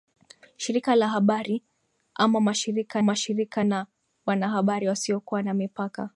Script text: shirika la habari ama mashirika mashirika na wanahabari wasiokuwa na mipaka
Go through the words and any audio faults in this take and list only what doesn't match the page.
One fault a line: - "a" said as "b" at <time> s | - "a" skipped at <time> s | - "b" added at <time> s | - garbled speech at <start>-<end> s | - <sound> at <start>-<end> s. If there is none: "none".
none